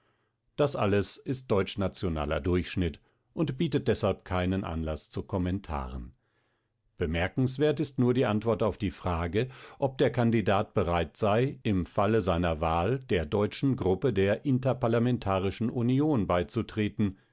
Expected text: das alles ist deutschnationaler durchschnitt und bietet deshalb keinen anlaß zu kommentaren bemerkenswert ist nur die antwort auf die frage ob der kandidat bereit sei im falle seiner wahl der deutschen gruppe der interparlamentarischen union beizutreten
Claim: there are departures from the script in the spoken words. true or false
false